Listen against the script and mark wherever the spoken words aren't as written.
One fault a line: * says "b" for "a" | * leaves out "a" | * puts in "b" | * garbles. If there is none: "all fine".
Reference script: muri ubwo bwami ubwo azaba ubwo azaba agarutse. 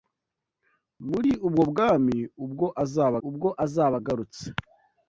all fine